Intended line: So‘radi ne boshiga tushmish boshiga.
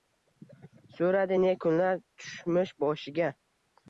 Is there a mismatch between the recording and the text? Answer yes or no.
yes